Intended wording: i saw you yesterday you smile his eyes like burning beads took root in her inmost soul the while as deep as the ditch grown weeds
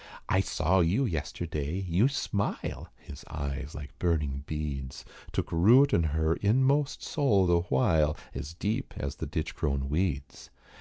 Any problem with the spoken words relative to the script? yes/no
no